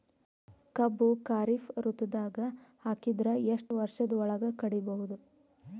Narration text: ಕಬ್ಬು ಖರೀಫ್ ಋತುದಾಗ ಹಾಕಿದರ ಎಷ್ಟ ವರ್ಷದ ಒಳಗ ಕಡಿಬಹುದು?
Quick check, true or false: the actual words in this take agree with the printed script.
true